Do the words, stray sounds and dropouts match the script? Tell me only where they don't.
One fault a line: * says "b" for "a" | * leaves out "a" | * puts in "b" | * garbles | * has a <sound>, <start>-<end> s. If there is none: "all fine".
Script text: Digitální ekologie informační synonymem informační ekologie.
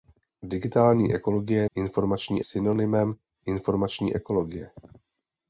all fine